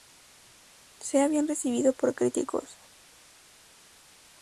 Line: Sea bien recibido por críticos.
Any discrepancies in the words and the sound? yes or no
no